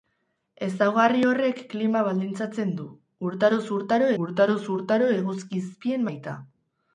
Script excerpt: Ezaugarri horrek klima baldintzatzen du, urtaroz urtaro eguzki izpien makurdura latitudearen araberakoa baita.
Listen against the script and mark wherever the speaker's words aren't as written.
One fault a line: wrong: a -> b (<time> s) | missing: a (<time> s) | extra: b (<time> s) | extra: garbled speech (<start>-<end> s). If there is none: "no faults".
extra: urtaroz urtaro (4.2 s)
missing: makurdura latitudearen araberakoa (6.1 s)